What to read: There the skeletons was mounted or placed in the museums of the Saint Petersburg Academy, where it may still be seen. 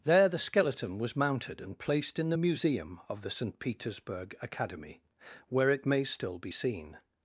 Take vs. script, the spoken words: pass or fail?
fail